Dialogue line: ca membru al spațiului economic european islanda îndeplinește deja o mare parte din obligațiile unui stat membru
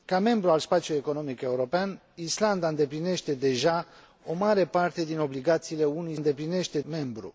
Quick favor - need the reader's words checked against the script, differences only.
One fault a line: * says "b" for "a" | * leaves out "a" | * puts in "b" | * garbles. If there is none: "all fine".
* says "îndeplinește" for "stat"